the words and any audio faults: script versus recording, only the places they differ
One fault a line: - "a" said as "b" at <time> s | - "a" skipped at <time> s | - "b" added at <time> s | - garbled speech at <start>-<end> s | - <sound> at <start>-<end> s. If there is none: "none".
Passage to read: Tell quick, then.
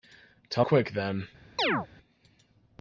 - chirp at 1.6-1.9 s